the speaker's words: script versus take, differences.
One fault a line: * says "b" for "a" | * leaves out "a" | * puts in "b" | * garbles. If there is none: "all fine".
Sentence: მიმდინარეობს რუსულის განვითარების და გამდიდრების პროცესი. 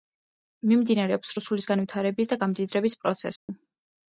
all fine